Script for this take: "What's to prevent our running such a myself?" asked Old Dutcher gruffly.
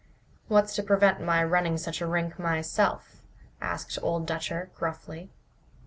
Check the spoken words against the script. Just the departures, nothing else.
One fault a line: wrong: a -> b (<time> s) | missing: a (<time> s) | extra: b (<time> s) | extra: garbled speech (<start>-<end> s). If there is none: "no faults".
wrong: our -> my (1.2 s)
extra: rink (2.1 s)